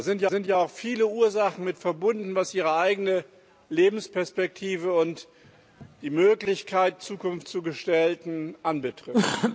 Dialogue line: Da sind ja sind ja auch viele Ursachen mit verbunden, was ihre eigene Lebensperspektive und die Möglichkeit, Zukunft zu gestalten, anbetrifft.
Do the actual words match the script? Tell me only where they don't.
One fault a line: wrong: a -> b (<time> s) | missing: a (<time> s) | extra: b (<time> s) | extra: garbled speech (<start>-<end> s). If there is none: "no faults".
no faults